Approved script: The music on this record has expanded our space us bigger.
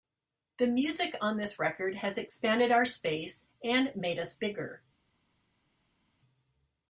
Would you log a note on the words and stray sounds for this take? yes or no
yes